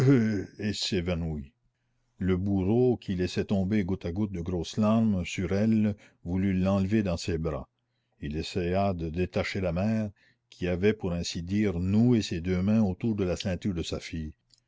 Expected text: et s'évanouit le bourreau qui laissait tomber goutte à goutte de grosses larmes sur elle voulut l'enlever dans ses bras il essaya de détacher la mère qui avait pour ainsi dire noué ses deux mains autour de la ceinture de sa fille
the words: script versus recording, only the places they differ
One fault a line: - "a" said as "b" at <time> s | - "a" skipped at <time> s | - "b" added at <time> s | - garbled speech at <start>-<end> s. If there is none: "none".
none